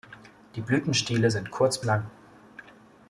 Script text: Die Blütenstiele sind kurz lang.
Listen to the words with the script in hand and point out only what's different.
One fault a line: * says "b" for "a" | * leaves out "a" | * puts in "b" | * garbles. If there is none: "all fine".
all fine